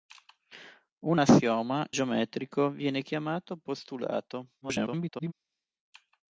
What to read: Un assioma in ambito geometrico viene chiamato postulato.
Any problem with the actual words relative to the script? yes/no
yes